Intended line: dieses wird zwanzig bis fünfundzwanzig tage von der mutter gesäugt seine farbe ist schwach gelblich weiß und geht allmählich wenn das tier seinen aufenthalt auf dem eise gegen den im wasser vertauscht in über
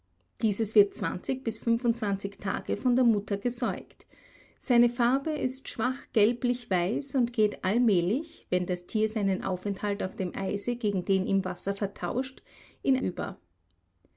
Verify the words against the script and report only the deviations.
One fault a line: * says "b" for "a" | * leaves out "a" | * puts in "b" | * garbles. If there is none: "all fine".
all fine